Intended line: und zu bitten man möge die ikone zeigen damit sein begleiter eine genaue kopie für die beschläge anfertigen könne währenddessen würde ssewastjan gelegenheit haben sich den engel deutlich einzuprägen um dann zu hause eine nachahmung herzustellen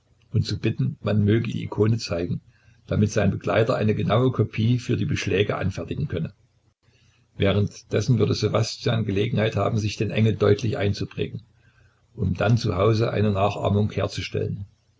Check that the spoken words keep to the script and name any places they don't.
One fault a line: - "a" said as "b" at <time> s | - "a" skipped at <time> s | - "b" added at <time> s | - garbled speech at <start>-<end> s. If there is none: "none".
none